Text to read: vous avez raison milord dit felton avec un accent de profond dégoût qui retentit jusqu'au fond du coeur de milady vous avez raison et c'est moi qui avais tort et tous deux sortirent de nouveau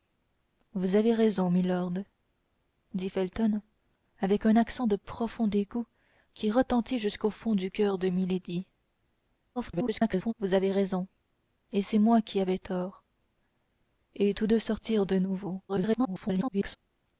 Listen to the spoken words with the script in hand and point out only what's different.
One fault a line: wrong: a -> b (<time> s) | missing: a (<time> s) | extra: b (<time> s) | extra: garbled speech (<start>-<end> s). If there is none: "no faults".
extra: garbled speech (9.6-10.3 s)
extra: garbled speech (15.7-16.8 s)